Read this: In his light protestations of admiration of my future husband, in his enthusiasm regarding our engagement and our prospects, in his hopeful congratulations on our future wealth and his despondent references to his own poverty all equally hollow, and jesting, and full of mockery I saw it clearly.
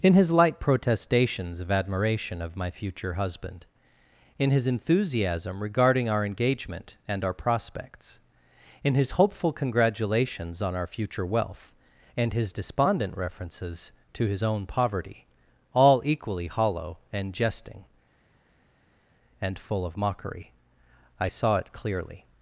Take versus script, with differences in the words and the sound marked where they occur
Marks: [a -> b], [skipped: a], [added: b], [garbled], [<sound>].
In his light protestations of admiration of my future husband, in his enthusiasm regarding our engagement and our prospects, in his hopeful congratulations on our future wealth and his despondent references to his own poverty all equally hollow, and jesting, and full of mockery I saw it clearly.